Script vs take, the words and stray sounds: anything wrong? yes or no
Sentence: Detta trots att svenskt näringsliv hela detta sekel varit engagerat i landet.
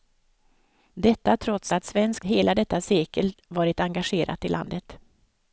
yes